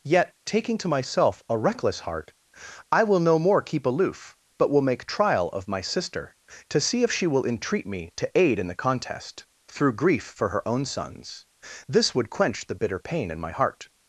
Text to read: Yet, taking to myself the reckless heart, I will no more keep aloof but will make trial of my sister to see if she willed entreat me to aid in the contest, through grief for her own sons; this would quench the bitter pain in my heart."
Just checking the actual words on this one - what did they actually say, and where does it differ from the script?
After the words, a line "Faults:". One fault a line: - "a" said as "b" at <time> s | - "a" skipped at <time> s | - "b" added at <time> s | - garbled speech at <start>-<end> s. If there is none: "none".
Yet, taking to myself a reckless heart, I will no more keep aloof but will make trial of my sister to see if she will entreat me to aid in the contest, through grief for her own sons; this would quench the bitter pain in my heart."
Faults:
- "the" said as "a" at 1.5 s
- "willed" said as "will" at 7.3 s